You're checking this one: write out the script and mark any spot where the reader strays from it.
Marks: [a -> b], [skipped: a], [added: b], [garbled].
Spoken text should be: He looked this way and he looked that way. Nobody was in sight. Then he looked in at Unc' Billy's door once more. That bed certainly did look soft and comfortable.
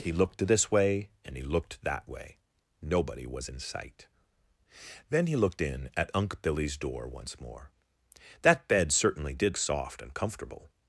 He looked this way and he looked that way. Nobody was in sight. Then he looked in at Unc' Billy's door once more. That bed certainly did [skipped: look] soft and comfortable.